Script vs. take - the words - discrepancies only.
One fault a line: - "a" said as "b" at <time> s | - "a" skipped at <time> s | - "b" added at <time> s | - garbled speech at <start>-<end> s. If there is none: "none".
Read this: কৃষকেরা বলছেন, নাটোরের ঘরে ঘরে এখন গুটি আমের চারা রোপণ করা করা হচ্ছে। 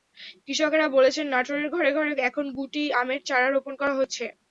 - "করা" skipped at 3.9 s